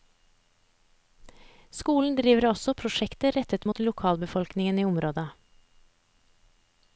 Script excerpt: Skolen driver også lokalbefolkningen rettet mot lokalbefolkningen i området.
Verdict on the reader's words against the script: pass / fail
fail